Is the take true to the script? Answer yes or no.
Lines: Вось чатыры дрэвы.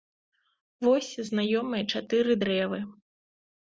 no